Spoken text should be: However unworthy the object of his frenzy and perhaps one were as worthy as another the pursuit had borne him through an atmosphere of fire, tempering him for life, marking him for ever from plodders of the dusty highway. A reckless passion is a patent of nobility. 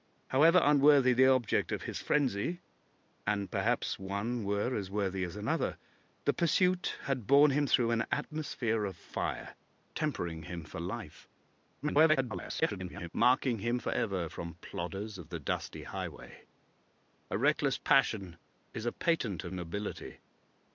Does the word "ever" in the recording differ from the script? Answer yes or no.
no